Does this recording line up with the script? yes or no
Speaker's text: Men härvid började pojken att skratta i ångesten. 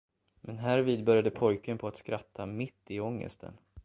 no